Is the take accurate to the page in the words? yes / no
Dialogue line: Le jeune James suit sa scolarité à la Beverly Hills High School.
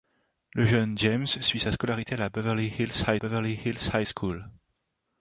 no